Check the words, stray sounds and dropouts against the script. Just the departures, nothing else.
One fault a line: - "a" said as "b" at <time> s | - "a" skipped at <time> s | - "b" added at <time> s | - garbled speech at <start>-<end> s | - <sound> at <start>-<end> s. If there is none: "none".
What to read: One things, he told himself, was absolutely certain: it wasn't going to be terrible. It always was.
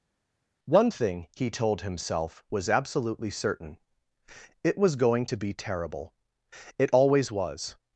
- "things" said as "thing" at 0.9 s
- "wasn't" said as "was" at 4.8 s